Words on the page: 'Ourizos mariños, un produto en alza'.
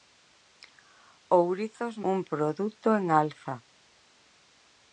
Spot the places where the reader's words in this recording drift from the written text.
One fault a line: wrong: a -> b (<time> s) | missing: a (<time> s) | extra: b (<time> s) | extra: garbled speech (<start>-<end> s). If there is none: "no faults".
missing: mariños (1.9 s)